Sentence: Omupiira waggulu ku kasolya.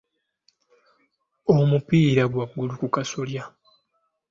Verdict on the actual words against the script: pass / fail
pass